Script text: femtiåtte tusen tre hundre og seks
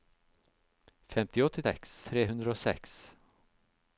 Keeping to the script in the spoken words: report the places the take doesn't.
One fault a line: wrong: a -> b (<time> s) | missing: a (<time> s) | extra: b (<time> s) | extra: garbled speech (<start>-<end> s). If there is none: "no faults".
wrong: tusen -> seks (1.6 s)